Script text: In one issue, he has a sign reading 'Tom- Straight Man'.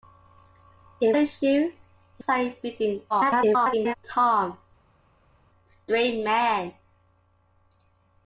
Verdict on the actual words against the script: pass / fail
fail